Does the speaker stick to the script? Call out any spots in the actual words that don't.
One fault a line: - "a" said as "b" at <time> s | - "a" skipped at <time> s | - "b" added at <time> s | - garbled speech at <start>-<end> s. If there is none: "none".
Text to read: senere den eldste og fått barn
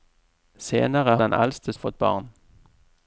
none